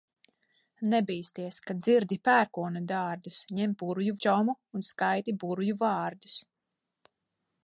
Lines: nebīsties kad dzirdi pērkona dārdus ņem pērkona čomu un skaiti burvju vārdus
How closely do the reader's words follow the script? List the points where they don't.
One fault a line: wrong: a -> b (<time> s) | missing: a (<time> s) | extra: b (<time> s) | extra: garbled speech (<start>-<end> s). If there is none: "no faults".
wrong: pērkona -> burvju (3.8 s)